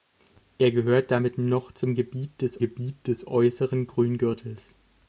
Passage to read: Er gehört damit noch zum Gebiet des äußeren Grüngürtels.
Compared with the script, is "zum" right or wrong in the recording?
right